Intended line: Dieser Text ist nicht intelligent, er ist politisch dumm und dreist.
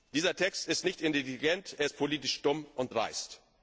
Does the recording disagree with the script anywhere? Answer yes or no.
no